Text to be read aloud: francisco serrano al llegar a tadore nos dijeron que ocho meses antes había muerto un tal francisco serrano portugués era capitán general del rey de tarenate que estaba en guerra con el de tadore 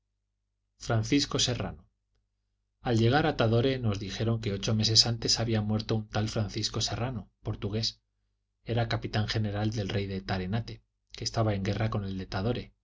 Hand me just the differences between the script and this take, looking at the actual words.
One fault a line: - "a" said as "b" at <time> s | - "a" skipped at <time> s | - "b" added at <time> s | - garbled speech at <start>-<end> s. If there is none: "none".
none